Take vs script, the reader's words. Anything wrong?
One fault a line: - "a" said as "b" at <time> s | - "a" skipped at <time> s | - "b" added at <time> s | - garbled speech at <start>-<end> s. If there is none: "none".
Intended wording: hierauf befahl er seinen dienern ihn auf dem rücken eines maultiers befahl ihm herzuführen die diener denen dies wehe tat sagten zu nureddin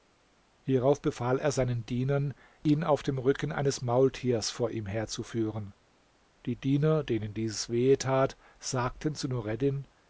- "befahl" said as "vor" at 4.5 s